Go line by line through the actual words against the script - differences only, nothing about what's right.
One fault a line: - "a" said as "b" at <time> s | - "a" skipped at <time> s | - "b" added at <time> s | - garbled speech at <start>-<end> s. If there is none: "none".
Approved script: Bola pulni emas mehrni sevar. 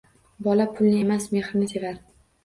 none